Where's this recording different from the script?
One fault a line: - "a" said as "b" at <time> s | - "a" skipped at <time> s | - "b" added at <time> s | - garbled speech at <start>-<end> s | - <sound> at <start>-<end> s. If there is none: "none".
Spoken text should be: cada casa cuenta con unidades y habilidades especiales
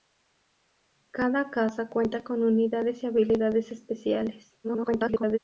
- garbled speech at 4.6-5.4 s